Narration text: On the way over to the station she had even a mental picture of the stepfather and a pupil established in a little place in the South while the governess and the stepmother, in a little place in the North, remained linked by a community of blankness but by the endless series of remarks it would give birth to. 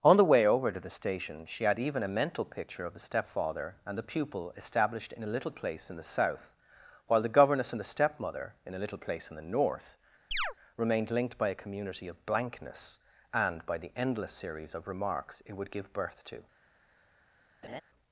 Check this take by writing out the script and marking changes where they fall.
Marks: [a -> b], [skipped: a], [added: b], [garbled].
On the way over to the station she had even a mental picture of the stepfather and [a -> the] pupil established in a little place in the South while the governess and the stepmother, in a little place in the North, remained linked by a community of blankness [but -> and] by the endless series of remarks it would give birth to.